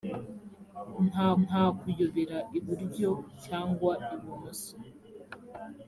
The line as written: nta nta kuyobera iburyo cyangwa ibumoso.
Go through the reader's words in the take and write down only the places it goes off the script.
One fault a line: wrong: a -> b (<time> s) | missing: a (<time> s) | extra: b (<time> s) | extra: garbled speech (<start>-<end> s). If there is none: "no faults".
no faults